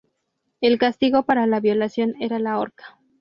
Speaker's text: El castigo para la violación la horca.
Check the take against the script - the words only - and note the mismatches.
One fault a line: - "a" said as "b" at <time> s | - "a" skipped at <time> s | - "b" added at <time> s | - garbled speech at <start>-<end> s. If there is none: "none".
- "era" added at 2.2 s